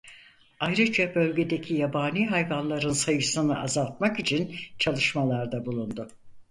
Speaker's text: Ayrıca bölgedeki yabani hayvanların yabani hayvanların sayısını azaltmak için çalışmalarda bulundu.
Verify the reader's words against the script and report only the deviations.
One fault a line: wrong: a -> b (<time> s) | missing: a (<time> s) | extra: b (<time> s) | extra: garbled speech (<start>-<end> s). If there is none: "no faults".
missing: yabani hayvanların (2.9 s)